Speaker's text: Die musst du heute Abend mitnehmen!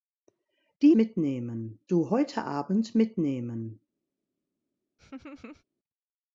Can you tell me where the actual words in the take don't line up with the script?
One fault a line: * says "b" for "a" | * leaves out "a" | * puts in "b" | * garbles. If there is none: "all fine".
* says "mitnehmen" for "musst"